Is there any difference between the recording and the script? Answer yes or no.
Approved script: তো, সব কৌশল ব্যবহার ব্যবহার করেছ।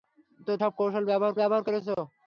no